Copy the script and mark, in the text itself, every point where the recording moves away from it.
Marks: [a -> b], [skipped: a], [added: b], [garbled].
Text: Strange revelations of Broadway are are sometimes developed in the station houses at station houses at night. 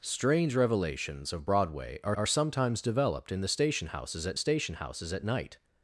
Strange revelations of Broadway are are sometimes developed in the station houses at station houses at night.